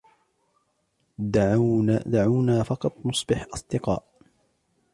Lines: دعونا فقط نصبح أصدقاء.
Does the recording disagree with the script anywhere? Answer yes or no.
no